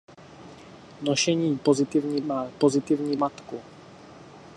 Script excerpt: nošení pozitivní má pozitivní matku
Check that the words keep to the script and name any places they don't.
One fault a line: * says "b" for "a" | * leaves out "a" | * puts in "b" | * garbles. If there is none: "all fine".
all fine